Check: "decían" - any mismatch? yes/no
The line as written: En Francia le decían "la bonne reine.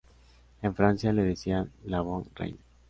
no